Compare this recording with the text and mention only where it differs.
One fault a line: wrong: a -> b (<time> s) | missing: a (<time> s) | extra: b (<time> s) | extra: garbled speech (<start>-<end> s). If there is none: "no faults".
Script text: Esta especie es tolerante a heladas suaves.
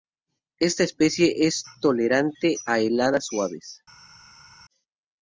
no faults